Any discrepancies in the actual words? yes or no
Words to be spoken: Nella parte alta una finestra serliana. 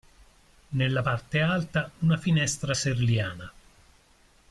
no